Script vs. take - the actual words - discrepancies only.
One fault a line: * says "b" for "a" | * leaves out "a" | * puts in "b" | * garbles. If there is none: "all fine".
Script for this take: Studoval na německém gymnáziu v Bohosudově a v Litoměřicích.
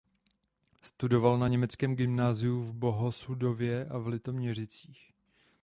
all fine